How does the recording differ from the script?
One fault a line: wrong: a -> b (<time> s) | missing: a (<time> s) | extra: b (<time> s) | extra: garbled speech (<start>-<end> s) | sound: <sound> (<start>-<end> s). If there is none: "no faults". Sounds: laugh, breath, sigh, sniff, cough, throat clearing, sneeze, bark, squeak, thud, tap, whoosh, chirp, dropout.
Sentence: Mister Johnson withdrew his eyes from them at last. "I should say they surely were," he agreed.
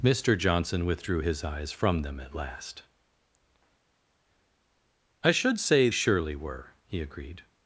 missing: they (5.9 s)